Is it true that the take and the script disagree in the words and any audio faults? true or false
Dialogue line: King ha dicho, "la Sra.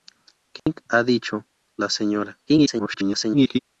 true